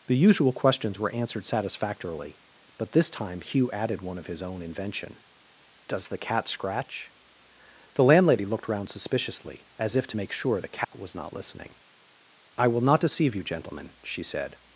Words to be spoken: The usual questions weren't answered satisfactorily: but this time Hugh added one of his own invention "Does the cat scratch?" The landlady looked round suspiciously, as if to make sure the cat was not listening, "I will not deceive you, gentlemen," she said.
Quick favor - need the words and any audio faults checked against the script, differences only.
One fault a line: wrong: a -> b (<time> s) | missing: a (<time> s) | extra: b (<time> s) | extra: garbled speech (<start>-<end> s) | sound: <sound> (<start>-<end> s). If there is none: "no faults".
wrong: weren't -> were (1.0 s)
sound: dropout (10.8-10.9 s)